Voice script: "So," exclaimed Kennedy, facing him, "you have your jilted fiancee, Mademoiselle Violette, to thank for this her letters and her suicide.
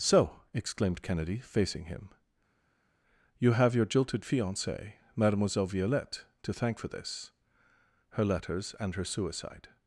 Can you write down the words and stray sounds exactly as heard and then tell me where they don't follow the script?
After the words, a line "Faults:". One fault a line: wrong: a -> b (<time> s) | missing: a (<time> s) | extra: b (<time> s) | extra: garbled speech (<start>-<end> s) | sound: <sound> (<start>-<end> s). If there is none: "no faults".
"So," exclaimed Kennedy, facing him, "you have your jilted fiancee, Mademoiselle Violette, to thank for this her letters and her suicide.
Faults:
no faults